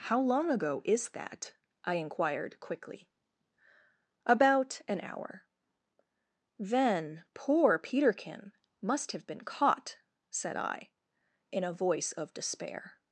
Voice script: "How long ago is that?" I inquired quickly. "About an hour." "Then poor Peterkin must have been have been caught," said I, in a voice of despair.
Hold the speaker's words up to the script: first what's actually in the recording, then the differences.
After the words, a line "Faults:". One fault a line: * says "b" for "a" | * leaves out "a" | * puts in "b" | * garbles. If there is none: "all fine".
"How long ago is that?" I inquired quickly. "About an hour." "Then poor Peterkin must have been caught," said I, in a voice of despair.
Faults:
* leaves out "have been"